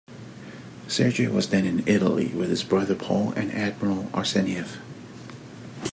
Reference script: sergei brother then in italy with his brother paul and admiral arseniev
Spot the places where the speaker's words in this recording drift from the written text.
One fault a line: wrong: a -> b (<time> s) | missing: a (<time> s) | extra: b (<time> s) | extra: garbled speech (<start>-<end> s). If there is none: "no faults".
wrong: brother -> was (1.3 s)